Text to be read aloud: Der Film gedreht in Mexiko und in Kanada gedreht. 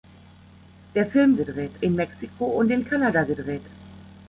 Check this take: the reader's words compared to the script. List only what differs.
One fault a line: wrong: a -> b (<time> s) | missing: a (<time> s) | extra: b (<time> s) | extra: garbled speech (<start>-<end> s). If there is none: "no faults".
no faults